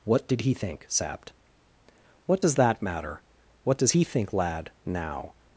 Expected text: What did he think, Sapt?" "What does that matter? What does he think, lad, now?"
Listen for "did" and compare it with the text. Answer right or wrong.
right